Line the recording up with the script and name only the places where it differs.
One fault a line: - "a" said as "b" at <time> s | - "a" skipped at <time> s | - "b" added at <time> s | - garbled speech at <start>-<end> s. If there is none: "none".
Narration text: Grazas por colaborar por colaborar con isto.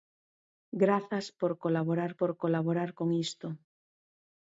none